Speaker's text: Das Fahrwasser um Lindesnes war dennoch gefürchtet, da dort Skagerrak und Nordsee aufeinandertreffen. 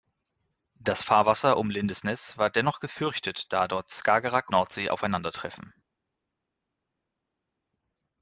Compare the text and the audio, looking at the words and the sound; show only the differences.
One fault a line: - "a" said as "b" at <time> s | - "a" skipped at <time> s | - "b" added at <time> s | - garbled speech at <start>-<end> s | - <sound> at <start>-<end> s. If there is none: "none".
- "und" skipped at 4.5 s